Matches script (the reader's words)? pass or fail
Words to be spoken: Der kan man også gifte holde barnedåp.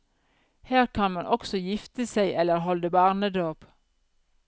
fail